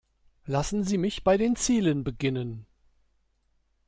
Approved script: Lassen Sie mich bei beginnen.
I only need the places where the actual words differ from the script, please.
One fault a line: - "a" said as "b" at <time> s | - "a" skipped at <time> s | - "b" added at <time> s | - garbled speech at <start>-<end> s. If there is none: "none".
- "den Zielen" added at 1.4 s